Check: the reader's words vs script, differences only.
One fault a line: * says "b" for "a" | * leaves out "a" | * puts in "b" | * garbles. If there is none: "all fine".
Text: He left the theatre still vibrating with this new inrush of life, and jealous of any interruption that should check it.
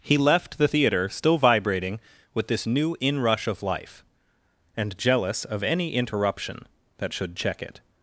all fine